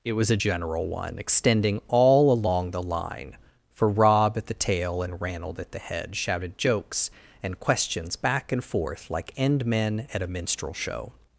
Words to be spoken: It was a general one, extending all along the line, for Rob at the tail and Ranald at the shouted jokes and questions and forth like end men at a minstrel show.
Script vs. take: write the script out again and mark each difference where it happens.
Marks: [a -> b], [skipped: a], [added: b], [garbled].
It was a general one, extending all along the line, for Rob at the tail and Ranald at the [added: head] shouted jokes and questions [added: back] and forth like end men at a minstrel show.